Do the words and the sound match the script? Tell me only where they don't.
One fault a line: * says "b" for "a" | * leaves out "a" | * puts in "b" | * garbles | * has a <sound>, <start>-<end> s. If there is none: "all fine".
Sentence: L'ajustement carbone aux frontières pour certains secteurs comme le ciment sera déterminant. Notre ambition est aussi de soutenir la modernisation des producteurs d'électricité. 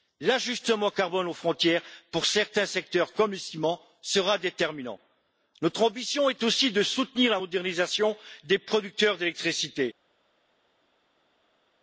all fine